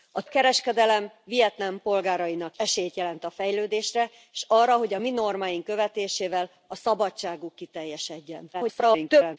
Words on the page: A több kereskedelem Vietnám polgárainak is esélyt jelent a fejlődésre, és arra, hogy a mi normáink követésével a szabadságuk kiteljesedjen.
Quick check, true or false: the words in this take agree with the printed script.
false